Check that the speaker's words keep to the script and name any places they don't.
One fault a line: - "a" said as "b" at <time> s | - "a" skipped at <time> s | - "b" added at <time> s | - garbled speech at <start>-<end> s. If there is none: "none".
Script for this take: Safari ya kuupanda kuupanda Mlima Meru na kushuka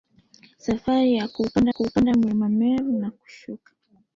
none